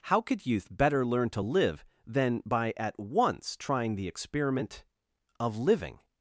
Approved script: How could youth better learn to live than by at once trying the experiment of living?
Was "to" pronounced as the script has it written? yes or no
yes